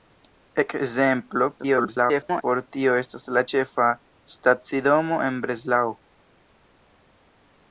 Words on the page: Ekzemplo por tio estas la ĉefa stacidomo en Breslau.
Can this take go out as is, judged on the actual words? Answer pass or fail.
fail